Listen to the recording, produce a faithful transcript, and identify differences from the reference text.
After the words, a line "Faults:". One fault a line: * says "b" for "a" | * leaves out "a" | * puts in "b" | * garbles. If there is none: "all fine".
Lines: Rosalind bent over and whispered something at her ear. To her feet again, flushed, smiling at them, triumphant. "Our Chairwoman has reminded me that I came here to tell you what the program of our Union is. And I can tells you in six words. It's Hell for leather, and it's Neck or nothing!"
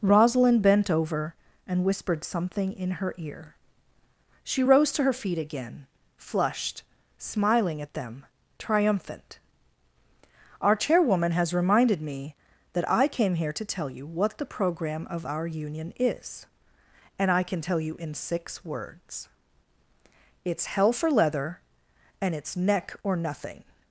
Rosalind bent over and whispered something in her ear. She rose to her feet again, flushed, smiling at them, triumphant. "Our Chairwoman has reminded me that I came here to tell you what the program of our Union is. And I can tell you in six words. It's Hell for leather, and it's Neck or nothing!"
Faults:
* says "in" for "at"
* puts in "She rose"
* says "tell" for "tells"